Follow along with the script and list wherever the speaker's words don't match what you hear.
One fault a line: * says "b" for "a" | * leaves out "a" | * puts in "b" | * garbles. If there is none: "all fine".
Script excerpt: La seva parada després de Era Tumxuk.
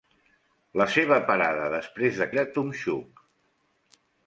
all fine